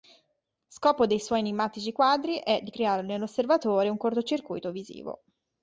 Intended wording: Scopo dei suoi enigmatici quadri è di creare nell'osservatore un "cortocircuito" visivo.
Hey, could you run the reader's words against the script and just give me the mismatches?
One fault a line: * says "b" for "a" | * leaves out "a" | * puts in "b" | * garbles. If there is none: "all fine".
all fine